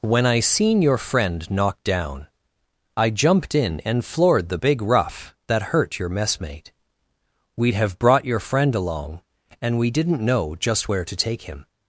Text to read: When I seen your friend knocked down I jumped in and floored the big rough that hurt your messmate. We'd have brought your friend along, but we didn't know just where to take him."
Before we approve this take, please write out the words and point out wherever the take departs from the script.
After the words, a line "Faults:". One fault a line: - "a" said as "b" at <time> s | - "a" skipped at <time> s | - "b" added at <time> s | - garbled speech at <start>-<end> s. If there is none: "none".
When I seen your friend knocked down I jumped in and floored the big rough that hurt your messmate. We'd have brought your friend along, and we didn't know just where to take him."
Faults:
- "but" said as "and" at 9.6 s